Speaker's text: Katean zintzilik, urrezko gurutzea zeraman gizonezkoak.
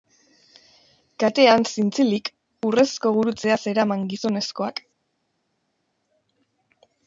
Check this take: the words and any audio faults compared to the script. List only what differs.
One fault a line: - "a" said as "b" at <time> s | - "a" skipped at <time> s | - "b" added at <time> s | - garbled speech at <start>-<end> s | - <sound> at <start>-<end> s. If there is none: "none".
none